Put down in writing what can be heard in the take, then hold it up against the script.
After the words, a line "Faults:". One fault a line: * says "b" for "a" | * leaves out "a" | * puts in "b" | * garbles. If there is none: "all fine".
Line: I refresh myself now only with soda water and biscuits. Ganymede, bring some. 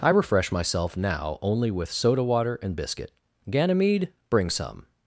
I refresh myself now only with soda water and biscuit. Ganymede, bring some.
Faults:
* says "biscuit" for "biscuits"